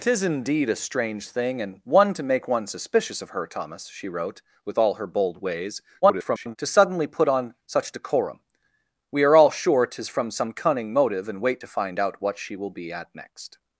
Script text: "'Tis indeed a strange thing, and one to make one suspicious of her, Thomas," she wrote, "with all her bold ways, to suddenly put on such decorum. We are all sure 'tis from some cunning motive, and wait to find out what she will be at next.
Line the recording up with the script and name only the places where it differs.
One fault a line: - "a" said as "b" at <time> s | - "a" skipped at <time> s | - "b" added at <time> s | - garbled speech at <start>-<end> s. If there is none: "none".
- garbled speech at 6.0-6.6 s